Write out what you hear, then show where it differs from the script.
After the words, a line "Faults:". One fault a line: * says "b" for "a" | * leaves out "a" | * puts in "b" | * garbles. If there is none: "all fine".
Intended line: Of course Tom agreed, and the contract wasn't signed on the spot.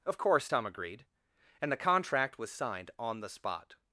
Of course Tom agreed, and the contract was signed on the spot.
Faults:
* says "was" for "wasn't"